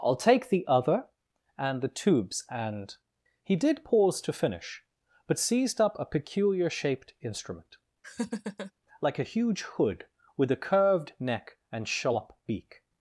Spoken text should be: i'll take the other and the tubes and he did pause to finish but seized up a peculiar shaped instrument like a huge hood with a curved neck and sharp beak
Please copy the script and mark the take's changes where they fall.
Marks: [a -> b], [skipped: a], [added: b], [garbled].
i'll take the other and the tubes and he did pause to finish but seized up a peculiar shaped instrument like a huge hood with a curved neck and sharp beak